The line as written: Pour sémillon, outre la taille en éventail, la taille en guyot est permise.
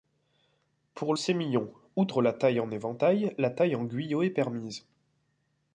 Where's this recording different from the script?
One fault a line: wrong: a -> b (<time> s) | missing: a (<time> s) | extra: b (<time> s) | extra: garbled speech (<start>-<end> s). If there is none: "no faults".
no faults